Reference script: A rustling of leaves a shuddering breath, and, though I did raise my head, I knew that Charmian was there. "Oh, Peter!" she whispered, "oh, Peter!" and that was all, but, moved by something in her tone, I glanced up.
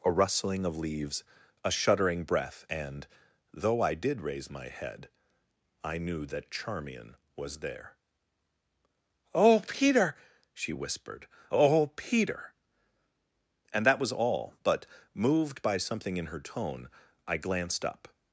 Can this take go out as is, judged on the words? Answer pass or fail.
pass